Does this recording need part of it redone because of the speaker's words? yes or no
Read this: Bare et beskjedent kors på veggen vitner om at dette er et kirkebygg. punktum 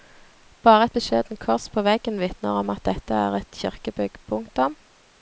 no